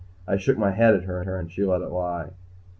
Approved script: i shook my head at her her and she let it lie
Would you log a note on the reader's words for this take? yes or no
no